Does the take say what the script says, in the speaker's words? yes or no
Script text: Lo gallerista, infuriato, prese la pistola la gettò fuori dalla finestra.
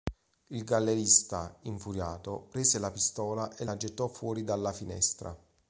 no